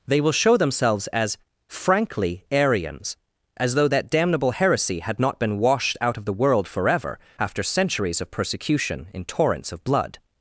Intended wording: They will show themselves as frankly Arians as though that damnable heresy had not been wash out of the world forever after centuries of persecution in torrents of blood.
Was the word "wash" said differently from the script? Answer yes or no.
yes